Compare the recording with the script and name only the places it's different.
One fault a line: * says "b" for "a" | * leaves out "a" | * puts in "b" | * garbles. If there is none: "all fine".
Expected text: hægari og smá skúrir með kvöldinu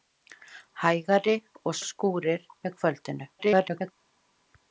* leaves out "smá"
* garbles